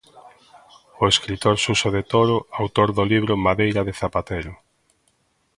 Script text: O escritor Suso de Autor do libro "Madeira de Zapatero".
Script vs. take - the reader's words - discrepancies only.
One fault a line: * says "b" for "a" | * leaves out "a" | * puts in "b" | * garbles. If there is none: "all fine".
* puts in "Toro"